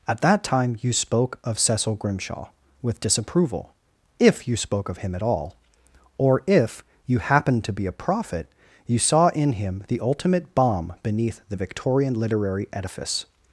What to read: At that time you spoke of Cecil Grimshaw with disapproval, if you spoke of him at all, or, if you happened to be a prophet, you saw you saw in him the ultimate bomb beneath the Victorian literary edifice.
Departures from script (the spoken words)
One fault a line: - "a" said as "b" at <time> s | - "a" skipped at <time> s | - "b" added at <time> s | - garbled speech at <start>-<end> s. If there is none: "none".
- "you saw" skipped at 9.3 s